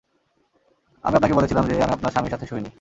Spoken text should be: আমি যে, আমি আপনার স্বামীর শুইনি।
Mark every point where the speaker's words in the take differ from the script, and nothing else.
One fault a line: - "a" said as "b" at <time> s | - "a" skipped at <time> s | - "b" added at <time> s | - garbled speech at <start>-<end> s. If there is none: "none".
- "আপনাকে বলেছিলাম" added at 1.1 s
- "সাথে" added at 2.3 s